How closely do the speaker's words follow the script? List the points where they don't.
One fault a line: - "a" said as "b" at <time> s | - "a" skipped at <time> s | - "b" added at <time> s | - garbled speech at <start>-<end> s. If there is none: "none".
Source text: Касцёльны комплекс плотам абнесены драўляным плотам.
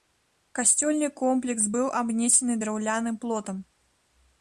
- "плотам" said as "быў" at 1.8 s